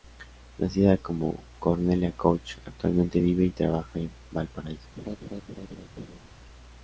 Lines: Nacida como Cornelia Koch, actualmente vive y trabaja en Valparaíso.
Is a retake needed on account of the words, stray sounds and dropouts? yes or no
yes